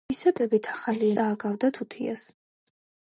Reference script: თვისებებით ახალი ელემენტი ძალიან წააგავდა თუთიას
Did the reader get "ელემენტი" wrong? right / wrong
wrong